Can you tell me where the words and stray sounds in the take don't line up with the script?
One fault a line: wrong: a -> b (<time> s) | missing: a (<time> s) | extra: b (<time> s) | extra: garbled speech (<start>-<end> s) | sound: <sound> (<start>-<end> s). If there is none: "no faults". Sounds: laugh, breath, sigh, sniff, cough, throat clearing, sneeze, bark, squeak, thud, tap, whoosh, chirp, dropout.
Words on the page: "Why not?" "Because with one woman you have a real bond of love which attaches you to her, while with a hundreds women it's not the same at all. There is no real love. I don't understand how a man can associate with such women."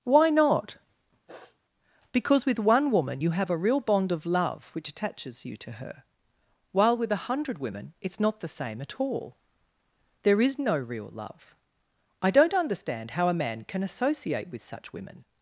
sound: sniff (1.3-1.6 s)
wrong: hundreds -> hundred (7.3 s)